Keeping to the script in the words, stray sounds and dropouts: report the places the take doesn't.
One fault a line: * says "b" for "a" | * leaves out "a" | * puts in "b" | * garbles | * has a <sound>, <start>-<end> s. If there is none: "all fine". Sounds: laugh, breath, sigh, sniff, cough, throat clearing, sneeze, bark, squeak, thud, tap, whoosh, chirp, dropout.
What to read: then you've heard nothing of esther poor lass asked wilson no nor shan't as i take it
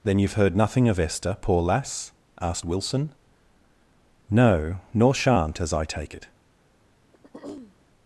* has a throat clearing, 7.1-7.8 s